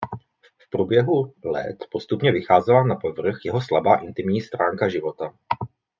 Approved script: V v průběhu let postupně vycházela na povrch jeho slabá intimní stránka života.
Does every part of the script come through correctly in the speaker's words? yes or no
yes